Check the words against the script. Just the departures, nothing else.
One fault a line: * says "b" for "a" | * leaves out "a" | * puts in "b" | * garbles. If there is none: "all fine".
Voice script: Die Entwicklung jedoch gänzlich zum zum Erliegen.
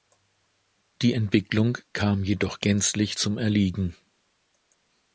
* puts in "kam"
* leaves out "zum"